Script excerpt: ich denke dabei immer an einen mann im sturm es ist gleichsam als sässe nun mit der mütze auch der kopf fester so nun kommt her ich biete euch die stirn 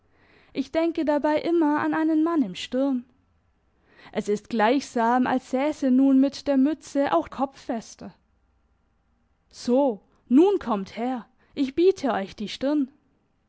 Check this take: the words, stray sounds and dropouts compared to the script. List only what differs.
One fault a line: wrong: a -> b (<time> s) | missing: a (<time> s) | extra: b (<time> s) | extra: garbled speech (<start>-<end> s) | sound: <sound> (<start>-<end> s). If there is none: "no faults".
missing: der (7.3 s)